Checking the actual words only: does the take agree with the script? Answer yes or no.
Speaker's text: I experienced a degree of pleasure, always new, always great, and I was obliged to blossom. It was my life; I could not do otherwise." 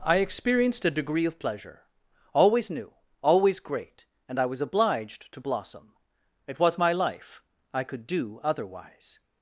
no